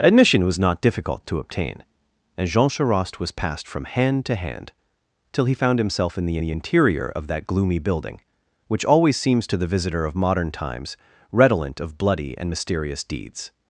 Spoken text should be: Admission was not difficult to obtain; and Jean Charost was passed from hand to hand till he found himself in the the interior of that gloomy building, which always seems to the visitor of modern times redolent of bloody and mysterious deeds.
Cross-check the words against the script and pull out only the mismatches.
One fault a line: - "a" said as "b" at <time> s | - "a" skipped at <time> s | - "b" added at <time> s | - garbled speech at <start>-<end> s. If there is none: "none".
none